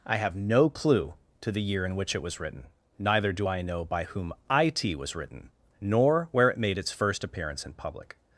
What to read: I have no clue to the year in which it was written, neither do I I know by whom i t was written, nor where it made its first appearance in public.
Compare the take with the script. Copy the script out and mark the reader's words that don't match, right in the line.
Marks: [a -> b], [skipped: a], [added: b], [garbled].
I have no clue to the year in which it was written, neither do I [skipped: I] know by whom i t was written, nor where it made its first appearance in public.